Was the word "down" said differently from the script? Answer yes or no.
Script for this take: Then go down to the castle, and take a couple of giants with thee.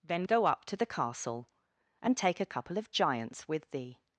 yes